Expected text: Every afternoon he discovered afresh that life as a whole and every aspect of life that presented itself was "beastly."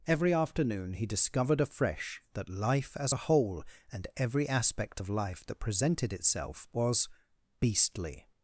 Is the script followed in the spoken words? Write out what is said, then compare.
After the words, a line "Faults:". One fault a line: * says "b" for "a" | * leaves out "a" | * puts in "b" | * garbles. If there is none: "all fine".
Every afternoon he discovered afresh that life as a whole and every aspect of life that presented itself was "beastly."
Faults:
all fine